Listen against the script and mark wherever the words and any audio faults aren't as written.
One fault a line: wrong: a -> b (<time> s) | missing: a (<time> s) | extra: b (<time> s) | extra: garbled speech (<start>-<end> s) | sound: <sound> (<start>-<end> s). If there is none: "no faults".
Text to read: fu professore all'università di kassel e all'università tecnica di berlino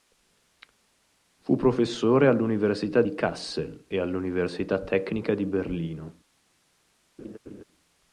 sound: laugh (7.2-7.6 s)